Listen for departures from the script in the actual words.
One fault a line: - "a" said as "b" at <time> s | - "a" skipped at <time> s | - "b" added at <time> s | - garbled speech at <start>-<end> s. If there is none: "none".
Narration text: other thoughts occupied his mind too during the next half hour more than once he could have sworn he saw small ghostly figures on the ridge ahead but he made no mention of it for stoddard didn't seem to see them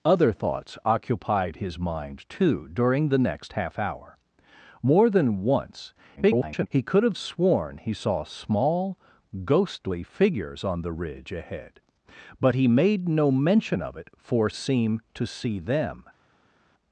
- garbled speech at 6.2-6.7 s
- "stoddard didn't" skipped at 14.5 s